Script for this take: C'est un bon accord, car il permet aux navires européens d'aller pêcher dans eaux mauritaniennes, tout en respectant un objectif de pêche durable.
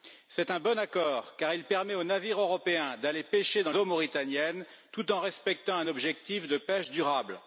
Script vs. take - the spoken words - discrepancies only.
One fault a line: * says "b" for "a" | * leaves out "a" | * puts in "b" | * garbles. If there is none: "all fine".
all fine